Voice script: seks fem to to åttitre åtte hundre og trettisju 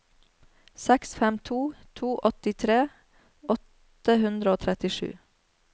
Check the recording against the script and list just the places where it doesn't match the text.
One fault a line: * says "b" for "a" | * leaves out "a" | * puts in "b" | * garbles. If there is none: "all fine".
all fine